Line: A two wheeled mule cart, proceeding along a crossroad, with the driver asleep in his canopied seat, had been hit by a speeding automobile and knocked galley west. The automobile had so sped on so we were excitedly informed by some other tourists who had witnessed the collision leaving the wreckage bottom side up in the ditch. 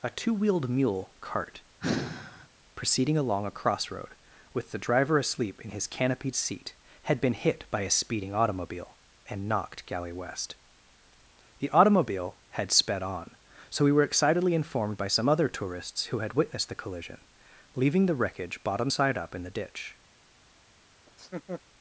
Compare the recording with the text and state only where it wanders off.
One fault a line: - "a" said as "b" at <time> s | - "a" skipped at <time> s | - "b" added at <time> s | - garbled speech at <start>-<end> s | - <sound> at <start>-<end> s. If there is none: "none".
- sigh at 1.8-2.5 s
- "so" skipped at 12.7 s
- laugh at 21.1-21.6 s